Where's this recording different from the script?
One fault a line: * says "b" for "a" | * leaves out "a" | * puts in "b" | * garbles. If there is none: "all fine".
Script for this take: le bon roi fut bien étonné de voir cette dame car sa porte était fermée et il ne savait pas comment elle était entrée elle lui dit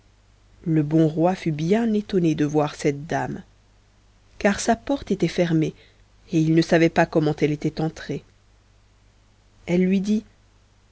all fine